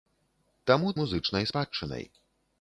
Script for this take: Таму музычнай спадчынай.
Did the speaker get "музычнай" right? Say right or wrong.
right